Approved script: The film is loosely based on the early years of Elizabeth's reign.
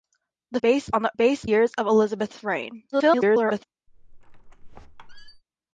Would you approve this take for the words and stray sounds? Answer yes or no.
no